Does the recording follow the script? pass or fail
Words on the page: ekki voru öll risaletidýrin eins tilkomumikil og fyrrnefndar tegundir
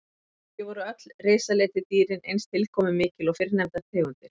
pass